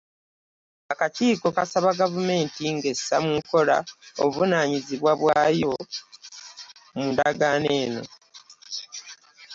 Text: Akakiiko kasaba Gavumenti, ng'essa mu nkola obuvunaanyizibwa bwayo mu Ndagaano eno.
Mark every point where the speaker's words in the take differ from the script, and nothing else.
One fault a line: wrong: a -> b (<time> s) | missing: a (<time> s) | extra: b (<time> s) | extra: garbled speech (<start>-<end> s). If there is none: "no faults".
no faults